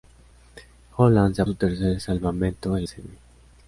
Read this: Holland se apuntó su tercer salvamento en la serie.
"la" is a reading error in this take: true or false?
true